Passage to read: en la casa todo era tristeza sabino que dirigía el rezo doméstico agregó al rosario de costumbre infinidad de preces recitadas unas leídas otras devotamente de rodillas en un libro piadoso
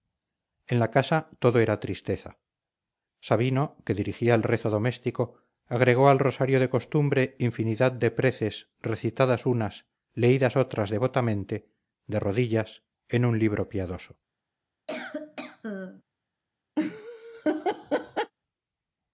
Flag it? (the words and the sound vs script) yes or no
yes